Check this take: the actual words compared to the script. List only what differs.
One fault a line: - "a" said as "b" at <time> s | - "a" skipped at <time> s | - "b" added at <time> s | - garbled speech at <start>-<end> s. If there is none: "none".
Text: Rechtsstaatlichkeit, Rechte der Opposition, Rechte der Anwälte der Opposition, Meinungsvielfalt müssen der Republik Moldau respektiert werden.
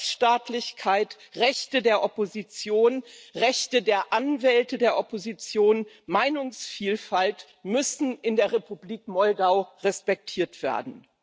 - "in" added at 8.2 s